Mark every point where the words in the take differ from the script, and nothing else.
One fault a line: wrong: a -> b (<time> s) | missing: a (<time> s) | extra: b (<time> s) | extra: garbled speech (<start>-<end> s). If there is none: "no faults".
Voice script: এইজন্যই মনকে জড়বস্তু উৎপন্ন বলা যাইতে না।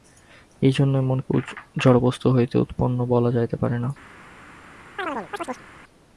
extra: হইতে (2.3 s)
extra: পারে (3.6 s)